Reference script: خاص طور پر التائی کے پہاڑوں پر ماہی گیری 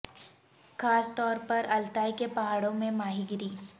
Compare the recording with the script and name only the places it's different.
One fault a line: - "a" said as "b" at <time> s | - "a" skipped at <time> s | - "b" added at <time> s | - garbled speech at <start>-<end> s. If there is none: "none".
- "پر" said as "میں" at 2.7 s